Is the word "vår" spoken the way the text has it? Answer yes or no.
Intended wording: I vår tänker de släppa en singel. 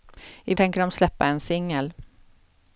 no